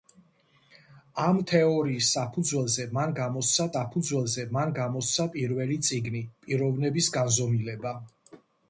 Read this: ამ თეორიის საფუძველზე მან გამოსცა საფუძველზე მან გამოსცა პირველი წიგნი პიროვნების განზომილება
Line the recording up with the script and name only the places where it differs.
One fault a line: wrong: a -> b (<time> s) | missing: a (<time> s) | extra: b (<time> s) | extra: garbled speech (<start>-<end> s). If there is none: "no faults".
no faults